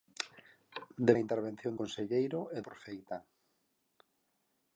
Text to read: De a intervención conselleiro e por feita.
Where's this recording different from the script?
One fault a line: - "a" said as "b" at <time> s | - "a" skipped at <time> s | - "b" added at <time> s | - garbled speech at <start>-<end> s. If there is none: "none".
none